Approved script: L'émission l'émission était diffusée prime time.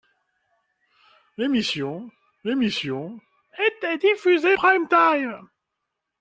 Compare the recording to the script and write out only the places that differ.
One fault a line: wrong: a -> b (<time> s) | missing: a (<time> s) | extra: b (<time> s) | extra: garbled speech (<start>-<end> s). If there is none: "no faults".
no faults